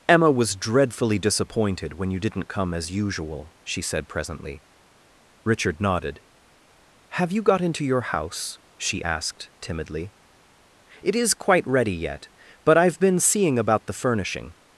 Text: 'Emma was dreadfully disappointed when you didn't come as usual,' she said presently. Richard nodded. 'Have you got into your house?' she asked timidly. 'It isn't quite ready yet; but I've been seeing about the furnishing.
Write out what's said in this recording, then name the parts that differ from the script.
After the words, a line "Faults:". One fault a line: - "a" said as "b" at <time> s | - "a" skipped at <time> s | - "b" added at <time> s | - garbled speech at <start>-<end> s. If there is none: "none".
'Emma was dreadfully disappointed when you didn't come as usual,' she said presently. Richard nodded. 'Have you got into your house?' she asked timidly. 'It is quite ready yet; but I've been seeing about the furnishing.
Faults:
- "isn't" said as "is" at 11.1 s